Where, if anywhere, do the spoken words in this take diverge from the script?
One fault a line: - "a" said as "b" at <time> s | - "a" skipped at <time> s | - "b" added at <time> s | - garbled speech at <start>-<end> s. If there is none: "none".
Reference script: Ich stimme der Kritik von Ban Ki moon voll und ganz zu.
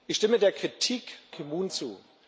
- "von Ban" skipped at 1.2 s
- "voll und ganz" skipped at 1.7 s